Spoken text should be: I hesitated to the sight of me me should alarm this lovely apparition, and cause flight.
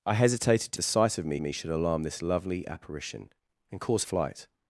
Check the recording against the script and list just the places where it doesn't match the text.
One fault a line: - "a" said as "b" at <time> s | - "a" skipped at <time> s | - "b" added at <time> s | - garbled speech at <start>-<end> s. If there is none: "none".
none